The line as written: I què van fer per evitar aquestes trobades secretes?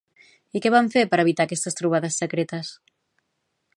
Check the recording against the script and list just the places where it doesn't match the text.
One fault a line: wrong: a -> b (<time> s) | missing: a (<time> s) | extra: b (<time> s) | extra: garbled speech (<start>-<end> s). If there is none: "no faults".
no faults